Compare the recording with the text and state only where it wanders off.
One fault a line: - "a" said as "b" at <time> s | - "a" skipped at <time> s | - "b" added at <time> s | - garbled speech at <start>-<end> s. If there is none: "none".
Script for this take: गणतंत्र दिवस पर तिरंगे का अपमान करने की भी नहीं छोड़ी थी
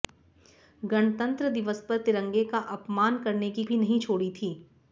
none